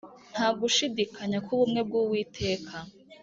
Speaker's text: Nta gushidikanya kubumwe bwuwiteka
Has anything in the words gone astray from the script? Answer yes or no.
no